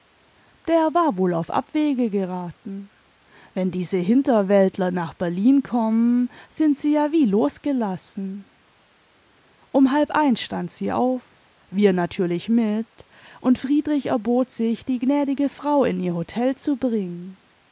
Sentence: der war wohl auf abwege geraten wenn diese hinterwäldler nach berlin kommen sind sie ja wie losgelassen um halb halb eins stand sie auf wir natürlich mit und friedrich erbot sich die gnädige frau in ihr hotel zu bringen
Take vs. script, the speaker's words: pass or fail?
fail